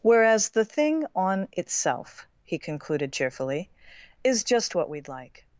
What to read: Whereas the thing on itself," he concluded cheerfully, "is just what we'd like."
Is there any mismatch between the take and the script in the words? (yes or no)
no